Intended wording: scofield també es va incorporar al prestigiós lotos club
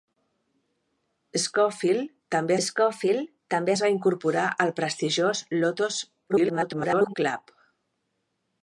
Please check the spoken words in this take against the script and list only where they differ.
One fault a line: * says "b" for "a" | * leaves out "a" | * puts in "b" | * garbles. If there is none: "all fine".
* puts in "scofield també"
* garbles